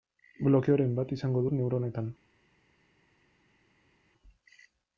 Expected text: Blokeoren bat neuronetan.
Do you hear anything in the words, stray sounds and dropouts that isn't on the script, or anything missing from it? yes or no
yes